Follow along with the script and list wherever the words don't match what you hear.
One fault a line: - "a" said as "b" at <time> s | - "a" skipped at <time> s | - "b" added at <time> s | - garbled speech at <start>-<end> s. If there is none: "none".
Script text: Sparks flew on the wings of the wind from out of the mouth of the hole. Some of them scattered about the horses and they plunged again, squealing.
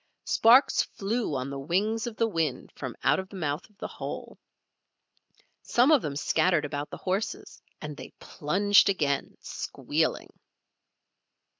none